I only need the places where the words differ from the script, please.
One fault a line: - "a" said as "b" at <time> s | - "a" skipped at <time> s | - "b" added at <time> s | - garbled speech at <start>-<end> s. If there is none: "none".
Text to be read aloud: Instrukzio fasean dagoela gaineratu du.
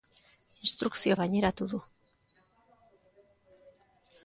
- "fasean dagoela" skipped at 1.2 s